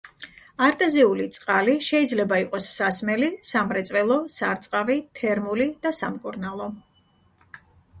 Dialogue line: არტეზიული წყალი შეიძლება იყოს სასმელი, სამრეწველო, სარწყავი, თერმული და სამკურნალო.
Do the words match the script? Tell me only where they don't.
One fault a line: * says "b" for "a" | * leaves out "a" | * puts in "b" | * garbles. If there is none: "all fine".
all fine